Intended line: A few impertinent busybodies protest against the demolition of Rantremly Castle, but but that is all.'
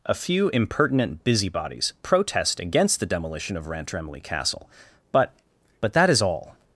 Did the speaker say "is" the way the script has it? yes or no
yes